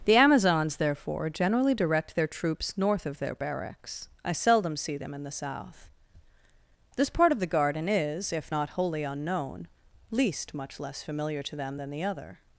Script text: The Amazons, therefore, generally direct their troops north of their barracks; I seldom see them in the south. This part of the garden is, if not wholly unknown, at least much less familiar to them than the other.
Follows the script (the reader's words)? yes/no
no